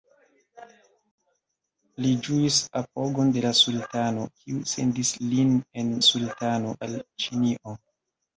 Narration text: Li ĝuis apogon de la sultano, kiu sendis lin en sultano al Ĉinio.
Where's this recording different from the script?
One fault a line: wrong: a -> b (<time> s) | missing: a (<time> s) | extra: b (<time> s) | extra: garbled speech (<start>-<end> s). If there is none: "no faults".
no faults